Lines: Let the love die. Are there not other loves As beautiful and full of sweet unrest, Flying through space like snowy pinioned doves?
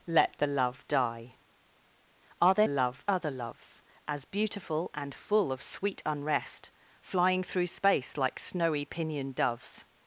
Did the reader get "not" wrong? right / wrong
wrong